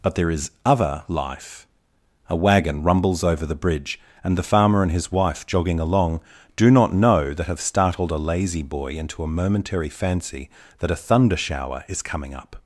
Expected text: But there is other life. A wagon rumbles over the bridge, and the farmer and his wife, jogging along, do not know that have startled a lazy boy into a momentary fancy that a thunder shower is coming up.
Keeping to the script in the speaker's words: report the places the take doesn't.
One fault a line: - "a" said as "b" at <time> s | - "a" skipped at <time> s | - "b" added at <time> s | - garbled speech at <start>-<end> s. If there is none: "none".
none